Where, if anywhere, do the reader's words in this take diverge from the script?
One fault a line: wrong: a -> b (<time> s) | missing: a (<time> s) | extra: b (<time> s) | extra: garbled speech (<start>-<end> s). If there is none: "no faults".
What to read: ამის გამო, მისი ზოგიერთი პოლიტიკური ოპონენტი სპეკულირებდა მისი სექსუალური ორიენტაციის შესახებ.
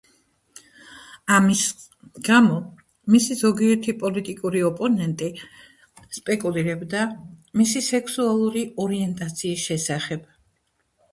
no faults